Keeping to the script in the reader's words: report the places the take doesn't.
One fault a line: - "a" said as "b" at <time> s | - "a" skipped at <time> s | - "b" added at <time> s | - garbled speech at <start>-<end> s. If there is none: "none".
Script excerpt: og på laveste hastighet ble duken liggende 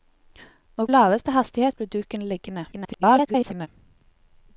- "på" skipped at 0.9 s
- garbled speech at 2.7-3.7 s